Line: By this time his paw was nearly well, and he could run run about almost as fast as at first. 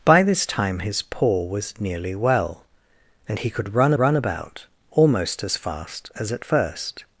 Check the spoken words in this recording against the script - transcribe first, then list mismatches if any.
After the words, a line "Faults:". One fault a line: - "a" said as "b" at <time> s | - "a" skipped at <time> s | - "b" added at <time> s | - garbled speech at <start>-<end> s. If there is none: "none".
By this time his paw was nearly well, and he could run run about almost as fast as at first.
Faults:
none